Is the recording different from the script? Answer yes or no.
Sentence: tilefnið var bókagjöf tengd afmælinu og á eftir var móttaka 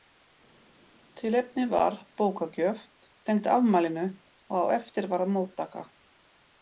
no